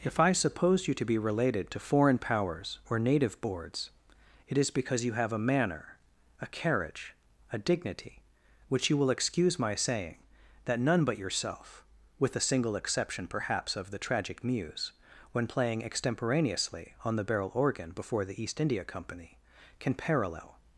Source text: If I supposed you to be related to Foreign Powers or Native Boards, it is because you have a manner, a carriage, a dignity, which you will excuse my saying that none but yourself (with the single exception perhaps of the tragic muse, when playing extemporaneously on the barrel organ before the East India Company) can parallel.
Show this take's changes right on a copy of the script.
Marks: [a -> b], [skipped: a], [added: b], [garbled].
If I [supposed -> suppose] you to be related to Foreign Powers or Native Boards, it is because you have a manner, a carriage, a dignity, which you will excuse my saying that none but yourself (with the single exception perhaps of the tragic muse, when playing extemporaneously on the barrel organ before the East India Company) can parallel.